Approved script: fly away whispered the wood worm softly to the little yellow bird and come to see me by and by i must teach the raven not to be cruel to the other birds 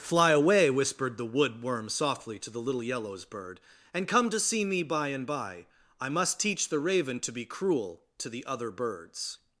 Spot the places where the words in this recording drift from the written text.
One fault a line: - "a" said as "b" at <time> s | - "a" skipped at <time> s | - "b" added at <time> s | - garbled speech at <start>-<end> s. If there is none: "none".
- "yellow" said as "yellows" at 2.8 s
- "not" skipped at 7.2 s